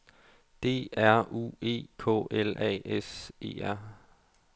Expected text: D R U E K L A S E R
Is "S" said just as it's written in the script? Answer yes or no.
yes